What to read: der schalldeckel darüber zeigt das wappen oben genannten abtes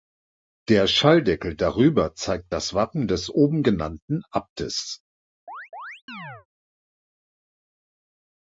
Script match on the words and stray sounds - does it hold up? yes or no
no